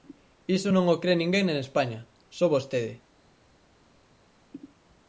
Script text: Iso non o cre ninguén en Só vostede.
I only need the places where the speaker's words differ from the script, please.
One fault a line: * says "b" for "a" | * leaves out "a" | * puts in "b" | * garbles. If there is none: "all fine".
* puts in "España"